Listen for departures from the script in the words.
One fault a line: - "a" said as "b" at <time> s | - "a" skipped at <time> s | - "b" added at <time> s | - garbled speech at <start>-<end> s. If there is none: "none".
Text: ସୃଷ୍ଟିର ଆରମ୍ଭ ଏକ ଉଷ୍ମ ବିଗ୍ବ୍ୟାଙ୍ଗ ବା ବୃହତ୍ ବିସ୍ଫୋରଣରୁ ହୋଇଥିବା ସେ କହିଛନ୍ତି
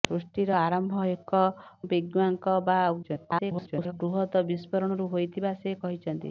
- "ଉଷ୍ମ" skipped at 1.4 s
- garbled speech at 3.0-3.9 s